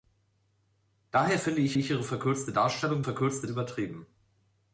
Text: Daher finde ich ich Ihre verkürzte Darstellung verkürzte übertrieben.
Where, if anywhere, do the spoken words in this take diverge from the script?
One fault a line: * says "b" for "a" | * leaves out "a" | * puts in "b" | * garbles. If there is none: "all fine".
all fine